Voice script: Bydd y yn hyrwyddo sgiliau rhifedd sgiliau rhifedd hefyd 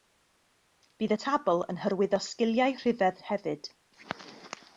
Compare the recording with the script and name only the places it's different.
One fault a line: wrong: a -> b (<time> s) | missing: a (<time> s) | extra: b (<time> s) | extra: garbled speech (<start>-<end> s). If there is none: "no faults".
extra: tabl (1.2 s)
missing: sgiliau rhifedd (3.2 s)